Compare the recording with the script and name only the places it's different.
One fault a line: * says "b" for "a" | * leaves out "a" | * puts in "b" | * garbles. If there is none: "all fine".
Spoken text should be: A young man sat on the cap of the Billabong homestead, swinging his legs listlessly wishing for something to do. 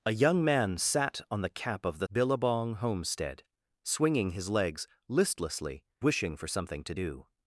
all fine